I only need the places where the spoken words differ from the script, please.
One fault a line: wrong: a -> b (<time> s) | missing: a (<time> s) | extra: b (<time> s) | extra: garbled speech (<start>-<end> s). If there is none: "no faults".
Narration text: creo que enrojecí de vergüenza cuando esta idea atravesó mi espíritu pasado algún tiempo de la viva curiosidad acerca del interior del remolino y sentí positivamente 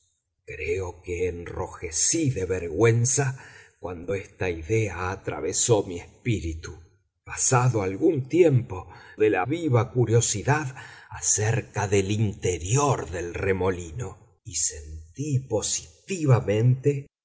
no faults